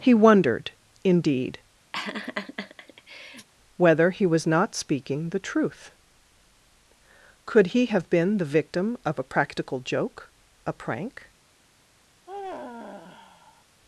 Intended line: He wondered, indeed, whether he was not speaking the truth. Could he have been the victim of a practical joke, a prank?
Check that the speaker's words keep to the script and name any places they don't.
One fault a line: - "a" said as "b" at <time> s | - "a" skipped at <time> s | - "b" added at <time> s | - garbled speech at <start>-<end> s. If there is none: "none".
none